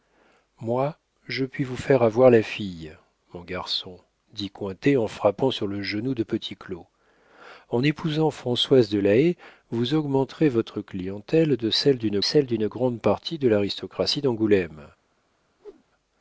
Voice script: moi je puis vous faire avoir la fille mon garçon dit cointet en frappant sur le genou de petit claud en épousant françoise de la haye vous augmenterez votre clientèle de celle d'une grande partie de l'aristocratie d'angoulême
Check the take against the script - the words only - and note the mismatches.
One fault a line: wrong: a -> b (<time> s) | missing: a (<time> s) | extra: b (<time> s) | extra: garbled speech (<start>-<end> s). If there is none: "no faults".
extra: celle d'une (12.2 s)